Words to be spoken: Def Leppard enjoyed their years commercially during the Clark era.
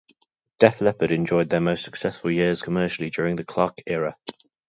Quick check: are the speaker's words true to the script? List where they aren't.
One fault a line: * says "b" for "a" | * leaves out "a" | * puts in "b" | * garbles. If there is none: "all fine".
* puts in "most successful"